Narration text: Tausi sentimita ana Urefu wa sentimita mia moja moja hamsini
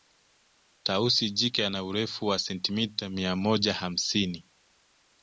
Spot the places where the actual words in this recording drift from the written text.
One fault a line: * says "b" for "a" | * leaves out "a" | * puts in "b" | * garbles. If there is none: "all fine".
* says "jike" for "sentimita"
* leaves out "moja"